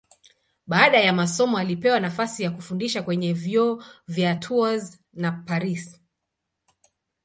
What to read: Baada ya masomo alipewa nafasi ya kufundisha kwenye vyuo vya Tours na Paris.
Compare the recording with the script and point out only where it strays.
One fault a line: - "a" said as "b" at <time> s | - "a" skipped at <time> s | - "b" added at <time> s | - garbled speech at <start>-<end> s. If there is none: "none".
none